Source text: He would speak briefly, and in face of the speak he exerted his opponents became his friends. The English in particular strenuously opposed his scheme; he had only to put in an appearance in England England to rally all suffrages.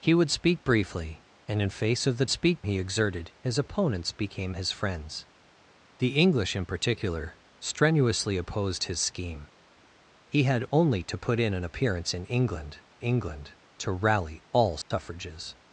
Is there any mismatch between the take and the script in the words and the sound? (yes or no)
yes